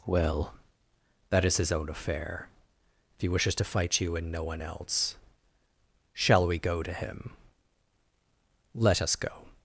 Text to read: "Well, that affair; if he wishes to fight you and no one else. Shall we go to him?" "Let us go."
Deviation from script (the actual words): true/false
true